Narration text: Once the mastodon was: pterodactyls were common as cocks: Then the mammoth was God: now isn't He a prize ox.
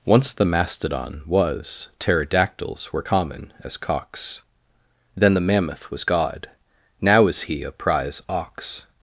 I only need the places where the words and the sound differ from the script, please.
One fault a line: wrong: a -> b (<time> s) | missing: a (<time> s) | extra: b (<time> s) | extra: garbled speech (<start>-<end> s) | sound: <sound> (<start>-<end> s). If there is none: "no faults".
wrong: isn't -> is (7.3 s)